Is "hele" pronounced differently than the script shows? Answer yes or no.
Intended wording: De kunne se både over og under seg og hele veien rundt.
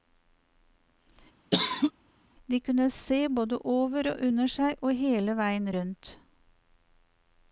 no